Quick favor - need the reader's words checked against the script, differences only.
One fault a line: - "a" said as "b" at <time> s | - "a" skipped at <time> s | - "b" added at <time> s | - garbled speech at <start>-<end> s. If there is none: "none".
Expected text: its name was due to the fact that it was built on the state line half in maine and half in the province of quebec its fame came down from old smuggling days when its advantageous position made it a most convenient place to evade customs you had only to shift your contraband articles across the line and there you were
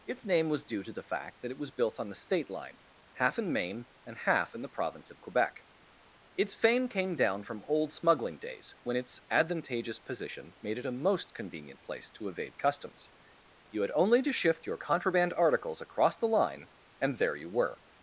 none